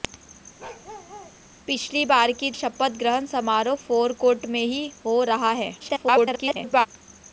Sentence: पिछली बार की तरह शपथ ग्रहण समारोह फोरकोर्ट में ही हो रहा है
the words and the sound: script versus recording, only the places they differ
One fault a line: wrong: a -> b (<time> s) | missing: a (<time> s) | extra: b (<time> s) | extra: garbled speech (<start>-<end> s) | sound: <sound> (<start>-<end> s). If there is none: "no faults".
sound: bark (0.6-1.4 s)
missing: तरह (2.5 s)
extra: garbled speech (5.8-6.9 s)